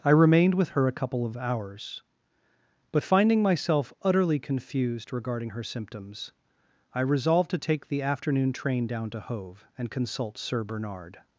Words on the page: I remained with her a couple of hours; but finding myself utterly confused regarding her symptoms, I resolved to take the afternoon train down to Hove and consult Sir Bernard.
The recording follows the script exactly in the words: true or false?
true